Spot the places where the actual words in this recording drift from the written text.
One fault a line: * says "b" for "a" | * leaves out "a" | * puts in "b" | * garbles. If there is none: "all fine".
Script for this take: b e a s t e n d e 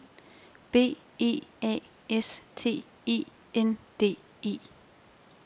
all fine